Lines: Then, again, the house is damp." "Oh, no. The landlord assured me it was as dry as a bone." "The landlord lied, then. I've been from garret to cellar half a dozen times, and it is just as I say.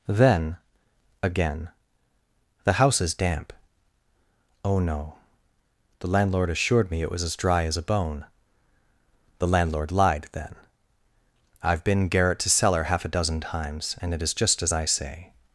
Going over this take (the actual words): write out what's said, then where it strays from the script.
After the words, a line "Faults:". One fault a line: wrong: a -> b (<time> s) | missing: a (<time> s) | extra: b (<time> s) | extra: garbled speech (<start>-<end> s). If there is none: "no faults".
Then, again, the house is damp." "Oh, no. The landlord assured me it was as dry as a bone." "The landlord lied, then. I've been garret to cellar half a dozen times, and it is just as I say.
Faults:
missing: from (12.1 s)